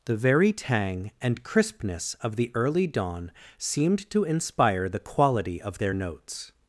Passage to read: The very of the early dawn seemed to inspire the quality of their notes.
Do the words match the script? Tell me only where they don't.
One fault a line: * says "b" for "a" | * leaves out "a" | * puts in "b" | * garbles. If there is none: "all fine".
* puts in "tang and crispness"